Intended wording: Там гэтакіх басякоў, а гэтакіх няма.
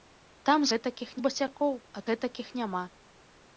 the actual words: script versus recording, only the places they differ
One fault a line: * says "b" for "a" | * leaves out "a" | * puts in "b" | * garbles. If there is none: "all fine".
all fine